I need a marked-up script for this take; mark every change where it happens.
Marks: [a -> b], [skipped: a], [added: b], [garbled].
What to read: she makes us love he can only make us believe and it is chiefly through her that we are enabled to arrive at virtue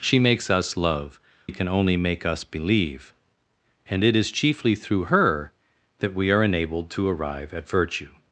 she makes us love he can only make us believe and it is chiefly through her that we are enabled to arrive at virtue